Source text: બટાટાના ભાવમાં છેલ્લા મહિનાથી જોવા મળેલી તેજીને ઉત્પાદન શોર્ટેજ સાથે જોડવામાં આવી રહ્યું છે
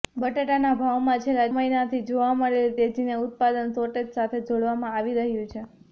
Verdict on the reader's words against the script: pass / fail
pass